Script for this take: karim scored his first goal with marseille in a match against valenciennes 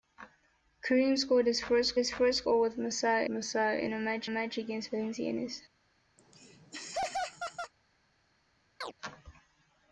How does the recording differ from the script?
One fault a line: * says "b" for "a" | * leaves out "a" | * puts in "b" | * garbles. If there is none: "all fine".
* puts in "his first"
* puts in "marseille"
* puts in "match"